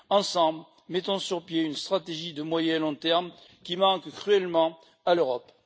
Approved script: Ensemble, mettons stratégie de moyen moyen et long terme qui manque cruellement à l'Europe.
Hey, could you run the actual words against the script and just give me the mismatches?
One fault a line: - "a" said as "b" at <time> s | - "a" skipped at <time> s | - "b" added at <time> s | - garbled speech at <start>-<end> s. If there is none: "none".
- "sur pied une" added at 1.2 s
- "moyen" skipped at 2.8 s